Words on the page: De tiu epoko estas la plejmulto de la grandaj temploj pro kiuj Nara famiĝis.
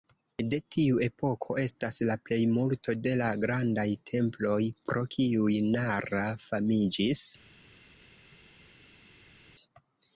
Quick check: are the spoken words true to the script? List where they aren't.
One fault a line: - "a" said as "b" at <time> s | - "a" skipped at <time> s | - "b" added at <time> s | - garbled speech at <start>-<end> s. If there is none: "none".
none